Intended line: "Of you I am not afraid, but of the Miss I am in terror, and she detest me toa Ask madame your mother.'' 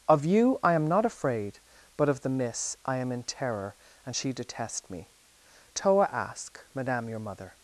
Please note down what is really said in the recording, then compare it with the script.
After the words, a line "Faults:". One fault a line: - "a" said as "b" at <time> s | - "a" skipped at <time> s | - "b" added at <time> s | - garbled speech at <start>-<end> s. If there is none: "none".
"Of you I am not afraid, but of the Miss I am in terror, and she detest me toa Ask madame your mother.''
Faults:
none